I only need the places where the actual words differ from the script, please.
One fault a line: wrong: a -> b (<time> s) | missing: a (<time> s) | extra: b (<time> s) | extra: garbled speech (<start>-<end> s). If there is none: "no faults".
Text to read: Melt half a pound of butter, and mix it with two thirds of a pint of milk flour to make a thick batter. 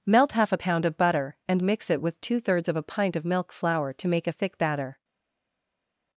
no faults